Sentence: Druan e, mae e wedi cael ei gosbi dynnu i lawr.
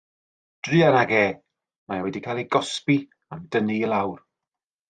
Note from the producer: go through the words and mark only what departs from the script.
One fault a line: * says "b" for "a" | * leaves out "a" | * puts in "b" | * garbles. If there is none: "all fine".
* puts in "ag"
* puts in "am"